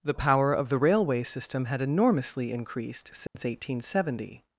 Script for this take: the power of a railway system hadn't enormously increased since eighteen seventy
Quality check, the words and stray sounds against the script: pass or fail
fail